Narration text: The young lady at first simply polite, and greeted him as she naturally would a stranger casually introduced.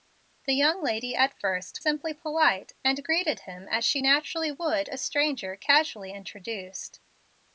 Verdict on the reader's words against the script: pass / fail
pass